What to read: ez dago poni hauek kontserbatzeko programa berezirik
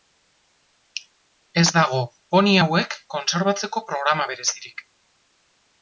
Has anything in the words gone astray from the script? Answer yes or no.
no